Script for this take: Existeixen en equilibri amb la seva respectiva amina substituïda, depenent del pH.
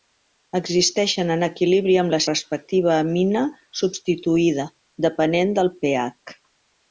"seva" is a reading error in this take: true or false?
true